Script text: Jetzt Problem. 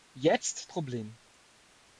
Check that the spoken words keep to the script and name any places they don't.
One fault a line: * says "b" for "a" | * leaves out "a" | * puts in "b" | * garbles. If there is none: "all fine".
all fine